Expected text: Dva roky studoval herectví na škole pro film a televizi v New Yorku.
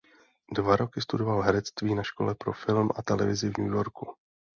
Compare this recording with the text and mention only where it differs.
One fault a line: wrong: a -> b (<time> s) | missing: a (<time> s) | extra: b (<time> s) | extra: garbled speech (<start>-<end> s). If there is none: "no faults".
no faults